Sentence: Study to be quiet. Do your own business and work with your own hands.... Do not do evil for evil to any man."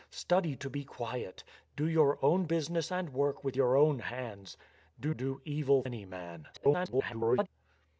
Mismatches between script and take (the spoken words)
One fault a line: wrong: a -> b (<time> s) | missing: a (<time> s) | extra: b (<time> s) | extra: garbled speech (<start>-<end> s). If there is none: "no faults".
missing: not (5.1 s)
missing: for evil to (5.8 s)
extra: garbled speech (6.5-7.5 s)